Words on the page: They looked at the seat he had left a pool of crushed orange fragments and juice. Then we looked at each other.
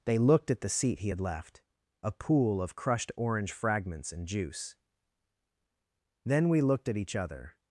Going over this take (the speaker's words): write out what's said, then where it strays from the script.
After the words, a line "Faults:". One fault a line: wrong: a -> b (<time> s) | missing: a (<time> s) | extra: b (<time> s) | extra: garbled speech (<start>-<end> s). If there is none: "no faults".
They looked at the seat he had left a pool of crushed orange fragments and juice. Then we looked at each other.
Faults:
no faults